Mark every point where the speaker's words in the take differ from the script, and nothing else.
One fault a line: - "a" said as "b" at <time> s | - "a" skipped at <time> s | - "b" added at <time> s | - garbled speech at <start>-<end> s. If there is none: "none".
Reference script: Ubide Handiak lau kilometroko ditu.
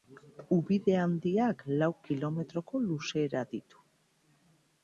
- "luzera" added at 2.9 s